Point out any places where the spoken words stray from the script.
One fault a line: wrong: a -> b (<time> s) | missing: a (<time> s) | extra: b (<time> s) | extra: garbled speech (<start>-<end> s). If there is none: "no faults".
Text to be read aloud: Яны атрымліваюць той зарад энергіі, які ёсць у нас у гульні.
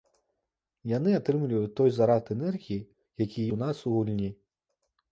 missing: ёсць (3.5 s)